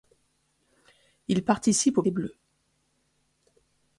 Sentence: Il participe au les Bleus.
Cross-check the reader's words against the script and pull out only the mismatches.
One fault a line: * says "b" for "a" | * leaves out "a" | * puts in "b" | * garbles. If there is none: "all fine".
all fine